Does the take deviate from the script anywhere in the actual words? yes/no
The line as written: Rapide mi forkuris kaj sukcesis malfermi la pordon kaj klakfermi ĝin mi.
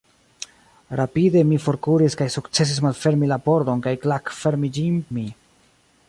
no